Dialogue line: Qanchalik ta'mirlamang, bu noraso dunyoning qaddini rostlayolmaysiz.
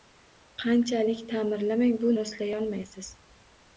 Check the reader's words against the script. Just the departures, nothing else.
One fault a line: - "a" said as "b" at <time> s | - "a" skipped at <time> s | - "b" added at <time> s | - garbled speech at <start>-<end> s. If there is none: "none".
- "noraso dunyoning qaddini" skipped at 2.1 s